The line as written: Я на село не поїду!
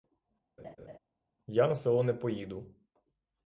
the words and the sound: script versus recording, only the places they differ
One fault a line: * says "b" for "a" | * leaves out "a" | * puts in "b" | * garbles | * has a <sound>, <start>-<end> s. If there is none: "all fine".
* has a laugh, 0.6-1.0 s